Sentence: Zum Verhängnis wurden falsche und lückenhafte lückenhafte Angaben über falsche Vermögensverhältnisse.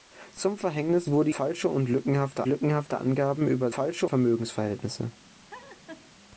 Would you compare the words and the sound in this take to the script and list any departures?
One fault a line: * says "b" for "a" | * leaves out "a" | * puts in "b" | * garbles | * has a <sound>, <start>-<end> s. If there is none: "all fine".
* has a laugh, 5.5-6.1 s